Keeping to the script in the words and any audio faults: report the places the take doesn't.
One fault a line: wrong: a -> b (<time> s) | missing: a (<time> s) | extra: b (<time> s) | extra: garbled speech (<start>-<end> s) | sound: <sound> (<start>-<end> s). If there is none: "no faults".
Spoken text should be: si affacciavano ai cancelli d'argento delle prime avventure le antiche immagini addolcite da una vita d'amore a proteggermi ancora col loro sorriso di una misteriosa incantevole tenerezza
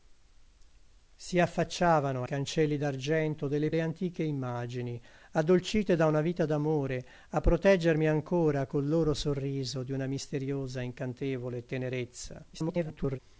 missing: ai (2.2 s)
missing: prime avventure (3.7 s)
extra: garbled speech (12.5-13.2 s)